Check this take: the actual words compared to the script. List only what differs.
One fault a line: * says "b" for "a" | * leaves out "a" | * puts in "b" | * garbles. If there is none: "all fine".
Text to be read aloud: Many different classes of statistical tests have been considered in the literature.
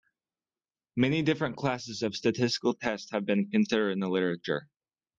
all fine